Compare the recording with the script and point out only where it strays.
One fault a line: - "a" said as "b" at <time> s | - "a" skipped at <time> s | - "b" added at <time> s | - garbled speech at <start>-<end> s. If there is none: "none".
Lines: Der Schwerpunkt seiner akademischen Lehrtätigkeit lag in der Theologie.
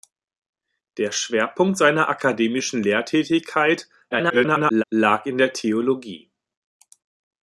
- garbled speech at 4.1-4.8 s